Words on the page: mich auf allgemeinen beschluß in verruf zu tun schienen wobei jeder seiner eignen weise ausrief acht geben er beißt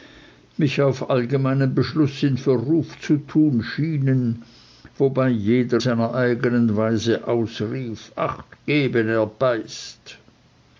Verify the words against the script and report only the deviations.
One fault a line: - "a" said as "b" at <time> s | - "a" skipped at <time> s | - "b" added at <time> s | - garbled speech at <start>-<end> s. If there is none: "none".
none